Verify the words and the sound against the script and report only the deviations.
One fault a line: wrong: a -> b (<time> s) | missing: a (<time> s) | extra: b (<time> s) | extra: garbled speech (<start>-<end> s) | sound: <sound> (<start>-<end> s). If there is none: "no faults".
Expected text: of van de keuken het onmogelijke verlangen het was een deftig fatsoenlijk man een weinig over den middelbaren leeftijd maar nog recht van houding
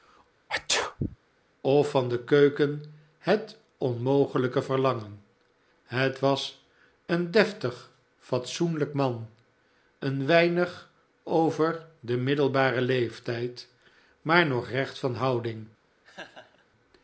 sound: sneeze (0.5-1.2 s)
sound: laugh (16.0-16.7 s)